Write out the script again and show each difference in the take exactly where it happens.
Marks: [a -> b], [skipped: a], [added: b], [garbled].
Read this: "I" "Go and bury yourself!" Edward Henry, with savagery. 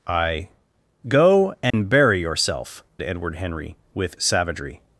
"I" "Go and bury yourself!" Edward Henry, with savagery.